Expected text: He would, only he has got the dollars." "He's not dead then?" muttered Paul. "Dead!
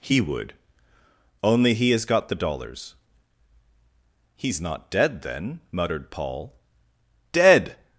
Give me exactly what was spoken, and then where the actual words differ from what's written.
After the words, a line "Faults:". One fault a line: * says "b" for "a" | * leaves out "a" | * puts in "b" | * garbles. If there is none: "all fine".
He would, only he has got the dollars." "He's not dead then?" muttered Paul. "Dead!
Faults:
all fine